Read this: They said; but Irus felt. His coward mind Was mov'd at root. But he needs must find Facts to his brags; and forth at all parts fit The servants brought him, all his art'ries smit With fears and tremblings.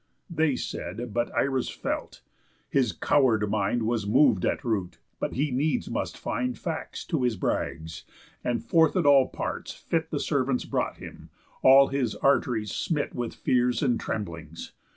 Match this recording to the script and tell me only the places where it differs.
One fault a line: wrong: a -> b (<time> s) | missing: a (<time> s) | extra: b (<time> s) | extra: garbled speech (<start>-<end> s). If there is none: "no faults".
no faults